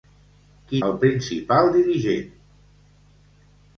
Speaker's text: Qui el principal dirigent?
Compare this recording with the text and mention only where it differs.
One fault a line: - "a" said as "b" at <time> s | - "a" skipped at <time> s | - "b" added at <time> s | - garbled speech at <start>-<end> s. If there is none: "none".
none